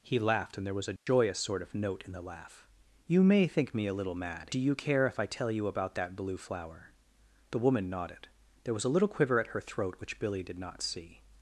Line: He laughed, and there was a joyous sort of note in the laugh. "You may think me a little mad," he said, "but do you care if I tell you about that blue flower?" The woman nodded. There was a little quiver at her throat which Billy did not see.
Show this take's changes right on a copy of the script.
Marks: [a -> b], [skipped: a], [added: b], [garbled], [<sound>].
He laughed, and there was a joyous [dropout] sort of note in the laugh. "You may think me a little mad," [skipped: he said, "but] do you care if I tell you about that blue flower?" The woman nodded. There was a little quiver at her throat which Billy did not see.